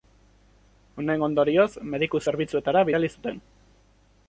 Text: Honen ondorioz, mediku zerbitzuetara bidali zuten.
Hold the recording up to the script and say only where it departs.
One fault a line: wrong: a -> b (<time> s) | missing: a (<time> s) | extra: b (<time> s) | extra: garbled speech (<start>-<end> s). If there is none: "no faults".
no faults